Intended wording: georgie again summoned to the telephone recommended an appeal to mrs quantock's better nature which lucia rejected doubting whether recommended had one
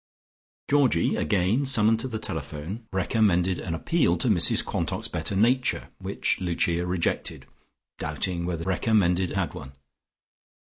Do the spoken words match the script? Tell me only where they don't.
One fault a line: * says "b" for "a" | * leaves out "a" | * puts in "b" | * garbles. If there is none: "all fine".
all fine